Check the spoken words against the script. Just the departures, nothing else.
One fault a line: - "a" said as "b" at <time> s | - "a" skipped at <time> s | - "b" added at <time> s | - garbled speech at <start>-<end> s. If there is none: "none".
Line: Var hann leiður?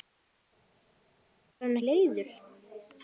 none